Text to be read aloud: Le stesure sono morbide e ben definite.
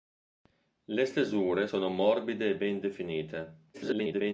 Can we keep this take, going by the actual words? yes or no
no